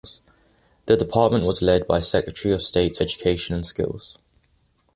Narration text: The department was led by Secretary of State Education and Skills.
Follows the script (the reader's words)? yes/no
yes